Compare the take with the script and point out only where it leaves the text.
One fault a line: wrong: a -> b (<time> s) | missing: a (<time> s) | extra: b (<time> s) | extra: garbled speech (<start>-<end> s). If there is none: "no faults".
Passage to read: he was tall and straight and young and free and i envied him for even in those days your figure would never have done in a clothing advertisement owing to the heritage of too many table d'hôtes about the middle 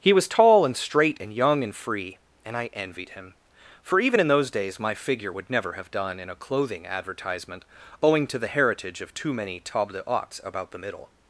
wrong: your -> my (4.8 s)